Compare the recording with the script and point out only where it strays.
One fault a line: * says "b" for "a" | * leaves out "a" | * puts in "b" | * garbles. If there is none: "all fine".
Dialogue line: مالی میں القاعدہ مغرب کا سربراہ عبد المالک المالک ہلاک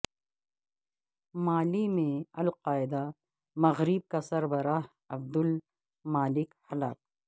* leaves out "المالک"